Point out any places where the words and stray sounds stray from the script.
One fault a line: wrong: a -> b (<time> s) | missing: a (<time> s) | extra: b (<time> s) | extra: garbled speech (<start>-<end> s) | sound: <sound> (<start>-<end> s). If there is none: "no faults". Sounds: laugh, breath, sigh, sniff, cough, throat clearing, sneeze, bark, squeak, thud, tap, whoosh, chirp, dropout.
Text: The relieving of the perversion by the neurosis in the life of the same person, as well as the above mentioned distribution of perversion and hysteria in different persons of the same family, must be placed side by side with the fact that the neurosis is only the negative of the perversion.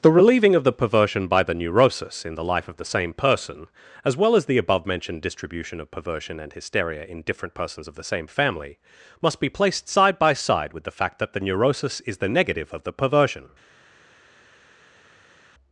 missing: only (12.2 s)